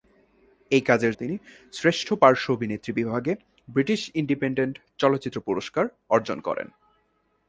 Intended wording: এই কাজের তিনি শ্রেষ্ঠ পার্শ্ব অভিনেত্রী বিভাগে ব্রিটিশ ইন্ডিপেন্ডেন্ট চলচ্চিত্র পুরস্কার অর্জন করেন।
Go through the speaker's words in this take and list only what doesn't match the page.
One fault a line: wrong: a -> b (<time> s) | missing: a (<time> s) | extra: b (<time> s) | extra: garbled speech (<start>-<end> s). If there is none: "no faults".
no faults